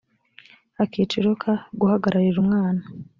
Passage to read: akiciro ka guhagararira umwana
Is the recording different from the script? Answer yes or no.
no